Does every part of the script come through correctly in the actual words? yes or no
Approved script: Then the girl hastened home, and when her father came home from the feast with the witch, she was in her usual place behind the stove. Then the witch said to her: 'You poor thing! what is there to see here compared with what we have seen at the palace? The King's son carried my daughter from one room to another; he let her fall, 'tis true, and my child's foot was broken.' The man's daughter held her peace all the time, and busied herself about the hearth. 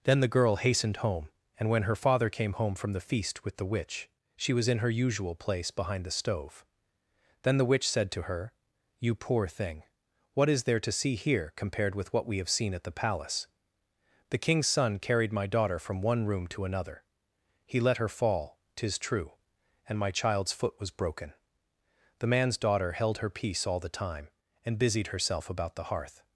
yes